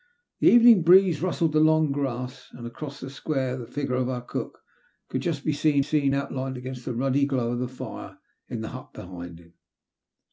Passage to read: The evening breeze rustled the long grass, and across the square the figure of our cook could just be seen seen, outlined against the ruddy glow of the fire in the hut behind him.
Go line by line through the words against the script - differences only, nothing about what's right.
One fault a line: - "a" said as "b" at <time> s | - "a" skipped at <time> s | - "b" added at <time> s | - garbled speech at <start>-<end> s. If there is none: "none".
none